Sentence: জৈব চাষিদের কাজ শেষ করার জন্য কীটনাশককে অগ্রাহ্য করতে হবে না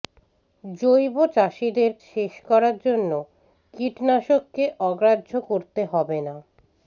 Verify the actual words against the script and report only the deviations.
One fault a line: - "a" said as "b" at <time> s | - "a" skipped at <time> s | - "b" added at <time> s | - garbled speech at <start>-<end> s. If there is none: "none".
- "কাজ" skipped at 1.9 s